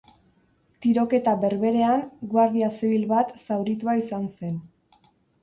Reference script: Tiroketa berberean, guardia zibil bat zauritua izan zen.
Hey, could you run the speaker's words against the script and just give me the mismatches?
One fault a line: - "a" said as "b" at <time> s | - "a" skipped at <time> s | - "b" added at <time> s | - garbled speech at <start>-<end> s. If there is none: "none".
none